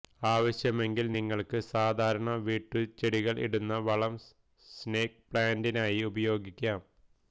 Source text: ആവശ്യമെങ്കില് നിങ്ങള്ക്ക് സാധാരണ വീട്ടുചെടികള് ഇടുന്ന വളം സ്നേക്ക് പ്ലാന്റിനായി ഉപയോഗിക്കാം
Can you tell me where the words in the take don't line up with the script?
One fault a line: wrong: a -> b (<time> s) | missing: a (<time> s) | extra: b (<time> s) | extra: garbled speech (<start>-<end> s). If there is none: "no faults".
no faults